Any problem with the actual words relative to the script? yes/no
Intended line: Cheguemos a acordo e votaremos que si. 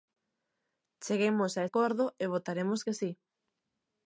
no